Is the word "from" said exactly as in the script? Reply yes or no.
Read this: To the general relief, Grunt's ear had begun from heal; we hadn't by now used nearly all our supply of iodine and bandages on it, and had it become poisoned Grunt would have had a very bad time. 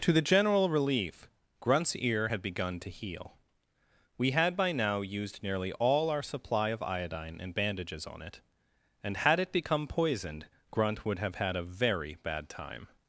no